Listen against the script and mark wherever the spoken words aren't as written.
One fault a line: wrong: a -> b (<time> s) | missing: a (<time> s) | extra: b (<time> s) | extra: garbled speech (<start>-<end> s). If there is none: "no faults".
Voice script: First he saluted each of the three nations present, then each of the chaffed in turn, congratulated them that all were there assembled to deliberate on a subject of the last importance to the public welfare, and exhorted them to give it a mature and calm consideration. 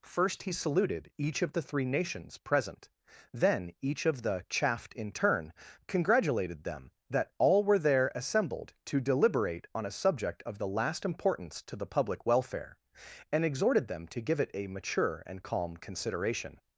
no faults